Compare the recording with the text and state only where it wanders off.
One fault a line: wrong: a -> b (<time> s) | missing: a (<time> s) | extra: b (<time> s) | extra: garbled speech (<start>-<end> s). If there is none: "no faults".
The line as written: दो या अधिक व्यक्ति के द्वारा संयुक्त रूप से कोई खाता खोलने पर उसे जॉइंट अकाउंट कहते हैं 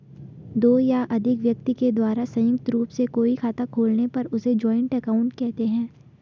no faults